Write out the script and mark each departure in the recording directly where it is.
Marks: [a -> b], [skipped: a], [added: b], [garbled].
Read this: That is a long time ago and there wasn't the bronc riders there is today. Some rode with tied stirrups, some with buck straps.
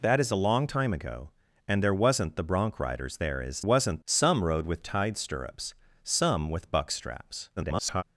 That is a long time ago and there wasn't the bronc riders there is [today. -> wasn't] Some rode with tied stirrups, some with buck straps. [garbled]